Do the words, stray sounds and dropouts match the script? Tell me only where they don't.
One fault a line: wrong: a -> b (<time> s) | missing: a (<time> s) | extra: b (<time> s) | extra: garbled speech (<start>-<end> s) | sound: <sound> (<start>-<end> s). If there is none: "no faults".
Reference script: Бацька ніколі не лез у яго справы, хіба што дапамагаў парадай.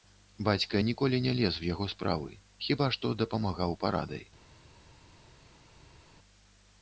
no faults